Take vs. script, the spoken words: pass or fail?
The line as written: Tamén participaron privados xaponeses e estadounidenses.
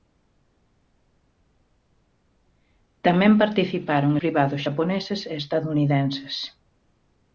pass